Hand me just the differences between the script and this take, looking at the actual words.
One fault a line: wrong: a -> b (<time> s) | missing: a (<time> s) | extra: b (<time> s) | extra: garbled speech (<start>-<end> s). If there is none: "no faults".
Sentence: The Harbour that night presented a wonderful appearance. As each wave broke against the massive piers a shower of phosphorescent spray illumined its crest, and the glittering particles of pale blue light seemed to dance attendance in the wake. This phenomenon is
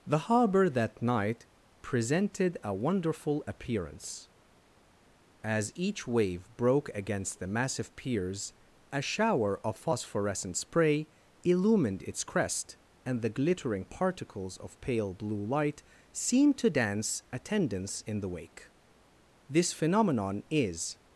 no faults